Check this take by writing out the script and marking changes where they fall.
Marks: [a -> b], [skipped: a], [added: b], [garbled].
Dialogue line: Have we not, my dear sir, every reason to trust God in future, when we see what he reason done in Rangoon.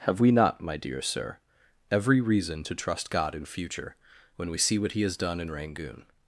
Have we not, my dear sir, every reason to trust God in future, when we see what he [reason -> has] done in Rangoon.